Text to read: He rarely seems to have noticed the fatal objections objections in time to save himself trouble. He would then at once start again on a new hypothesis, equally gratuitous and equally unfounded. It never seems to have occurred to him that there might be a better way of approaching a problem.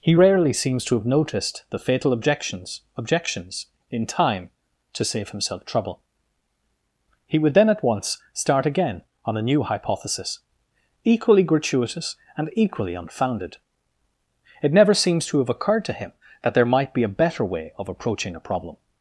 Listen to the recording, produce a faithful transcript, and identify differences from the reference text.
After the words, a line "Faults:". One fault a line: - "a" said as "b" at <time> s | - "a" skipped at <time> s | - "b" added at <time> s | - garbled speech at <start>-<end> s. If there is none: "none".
He rarely seems to have noticed the fatal objections objections in time to save himself trouble. He would then at once start again on a new hypothesis, equally gratuitous and equally unfounded. It never seems to have occurred to him that there might be a better way of approaching a problem.
Faults:
none